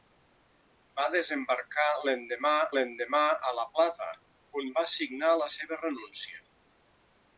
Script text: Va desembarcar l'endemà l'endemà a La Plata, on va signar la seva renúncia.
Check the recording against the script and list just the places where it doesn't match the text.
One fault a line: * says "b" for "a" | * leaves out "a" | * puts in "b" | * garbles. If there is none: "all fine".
all fine